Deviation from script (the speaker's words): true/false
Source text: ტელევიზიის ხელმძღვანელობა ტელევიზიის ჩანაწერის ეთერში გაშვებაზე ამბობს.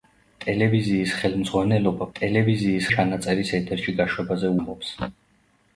false